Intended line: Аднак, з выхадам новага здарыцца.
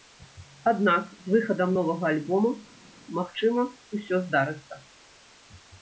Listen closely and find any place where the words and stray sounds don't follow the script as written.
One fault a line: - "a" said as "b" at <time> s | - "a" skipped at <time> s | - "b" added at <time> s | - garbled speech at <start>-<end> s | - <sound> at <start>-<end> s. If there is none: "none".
- "альбома магчыма усё" added at 2.1 s